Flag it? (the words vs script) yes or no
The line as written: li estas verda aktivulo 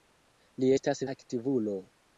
yes